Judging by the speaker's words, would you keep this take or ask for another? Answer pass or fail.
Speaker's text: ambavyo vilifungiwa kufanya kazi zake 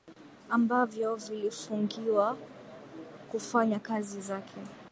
pass